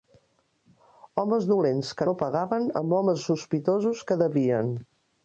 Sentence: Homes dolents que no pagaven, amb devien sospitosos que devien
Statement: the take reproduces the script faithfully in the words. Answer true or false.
false